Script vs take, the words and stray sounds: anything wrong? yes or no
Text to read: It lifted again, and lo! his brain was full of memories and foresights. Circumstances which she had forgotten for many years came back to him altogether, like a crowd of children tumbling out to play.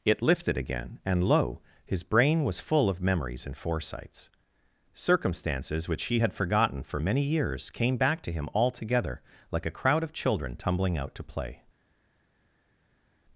yes